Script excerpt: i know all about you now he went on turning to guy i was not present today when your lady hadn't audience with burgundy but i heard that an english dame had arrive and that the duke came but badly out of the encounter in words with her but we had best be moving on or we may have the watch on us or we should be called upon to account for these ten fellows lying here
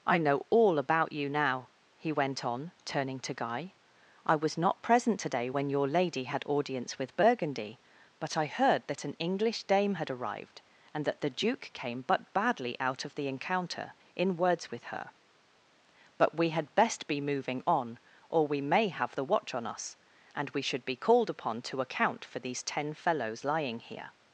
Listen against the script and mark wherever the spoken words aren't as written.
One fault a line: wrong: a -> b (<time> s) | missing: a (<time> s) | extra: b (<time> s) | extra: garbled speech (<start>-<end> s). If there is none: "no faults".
wrong: hadn't -> had (6.2 s)
wrong: arrive -> arrived (10.1 s)
wrong: or -> and (20.3 s)